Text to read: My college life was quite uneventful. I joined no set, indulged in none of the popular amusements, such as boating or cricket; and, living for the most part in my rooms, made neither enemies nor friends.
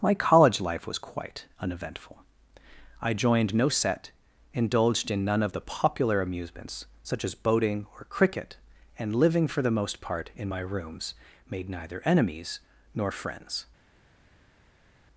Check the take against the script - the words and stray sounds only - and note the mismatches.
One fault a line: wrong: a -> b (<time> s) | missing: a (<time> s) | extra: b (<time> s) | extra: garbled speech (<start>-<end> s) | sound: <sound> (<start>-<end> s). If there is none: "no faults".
no faults